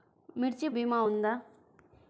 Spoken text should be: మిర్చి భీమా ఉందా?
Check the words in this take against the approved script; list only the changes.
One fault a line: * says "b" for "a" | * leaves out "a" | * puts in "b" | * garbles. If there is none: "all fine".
all fine